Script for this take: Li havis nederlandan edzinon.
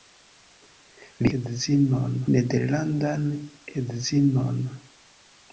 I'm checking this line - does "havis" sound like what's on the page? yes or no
no